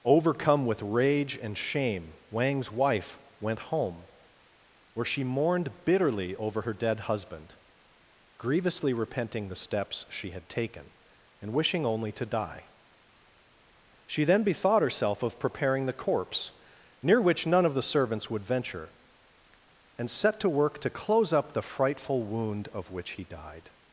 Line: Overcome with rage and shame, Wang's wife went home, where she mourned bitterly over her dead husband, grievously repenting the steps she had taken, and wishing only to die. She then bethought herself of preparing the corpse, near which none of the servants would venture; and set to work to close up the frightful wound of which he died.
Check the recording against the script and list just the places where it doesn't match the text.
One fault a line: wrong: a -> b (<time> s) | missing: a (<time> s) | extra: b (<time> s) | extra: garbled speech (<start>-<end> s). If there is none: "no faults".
no faults